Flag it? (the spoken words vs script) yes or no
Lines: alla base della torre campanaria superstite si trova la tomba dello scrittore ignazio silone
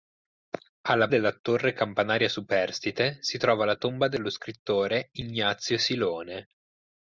yes